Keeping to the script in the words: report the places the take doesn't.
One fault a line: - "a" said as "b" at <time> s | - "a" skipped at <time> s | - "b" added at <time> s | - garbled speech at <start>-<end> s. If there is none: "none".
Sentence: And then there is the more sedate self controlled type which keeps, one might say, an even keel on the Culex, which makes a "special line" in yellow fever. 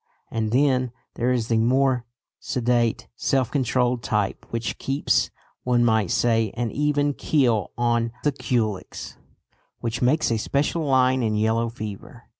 none